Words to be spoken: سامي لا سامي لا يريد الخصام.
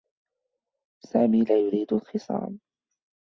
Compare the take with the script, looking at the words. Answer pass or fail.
fail